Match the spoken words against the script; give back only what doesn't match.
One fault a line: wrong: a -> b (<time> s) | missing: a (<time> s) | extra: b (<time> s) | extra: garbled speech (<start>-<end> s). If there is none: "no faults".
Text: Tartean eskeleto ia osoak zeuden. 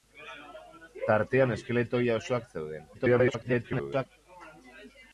extra: garbled speech (2.9-4.1 s)